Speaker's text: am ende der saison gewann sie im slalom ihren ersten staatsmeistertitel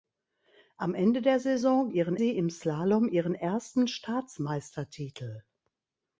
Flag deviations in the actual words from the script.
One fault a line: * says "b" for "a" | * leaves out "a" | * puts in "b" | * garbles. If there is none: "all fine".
* says "ihren" for "gewann"